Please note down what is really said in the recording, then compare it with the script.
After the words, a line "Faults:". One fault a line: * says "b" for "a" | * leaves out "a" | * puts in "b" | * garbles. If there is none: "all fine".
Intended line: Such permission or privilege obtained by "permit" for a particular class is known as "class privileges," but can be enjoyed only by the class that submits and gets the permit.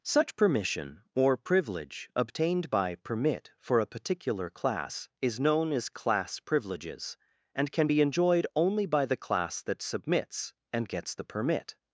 Such permission or privilege obtained by "permit" for a particular class is known as "class privileges," and can be enjoyed only by the class that submits and gets the permit.
Faults:
* says "and" for "but"